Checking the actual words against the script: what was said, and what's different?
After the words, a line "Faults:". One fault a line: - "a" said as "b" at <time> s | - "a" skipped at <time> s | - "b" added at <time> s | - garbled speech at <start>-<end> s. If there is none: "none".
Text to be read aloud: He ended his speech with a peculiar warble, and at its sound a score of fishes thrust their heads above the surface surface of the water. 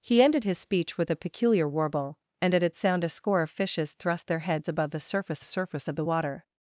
He ended his speech with a peculiar warble, and at its sound a score of fishes thrust their heads above the surface surface of the water.
Faults:
none